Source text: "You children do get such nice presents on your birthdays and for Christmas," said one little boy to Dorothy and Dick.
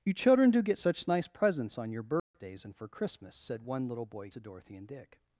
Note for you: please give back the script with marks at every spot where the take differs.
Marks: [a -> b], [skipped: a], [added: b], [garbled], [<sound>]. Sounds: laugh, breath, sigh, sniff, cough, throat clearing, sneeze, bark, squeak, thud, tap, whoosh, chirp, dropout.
"You children do get such nice presents on your birthdays [dropout] and for Christmas," said one little boy to Dorothy and Dick.